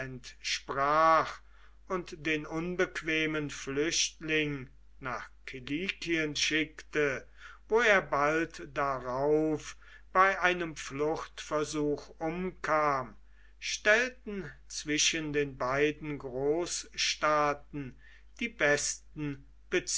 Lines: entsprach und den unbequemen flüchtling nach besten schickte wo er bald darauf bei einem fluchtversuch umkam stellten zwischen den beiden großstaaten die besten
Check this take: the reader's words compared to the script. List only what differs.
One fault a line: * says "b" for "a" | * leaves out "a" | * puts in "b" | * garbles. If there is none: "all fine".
* says "kilikien" for "besten"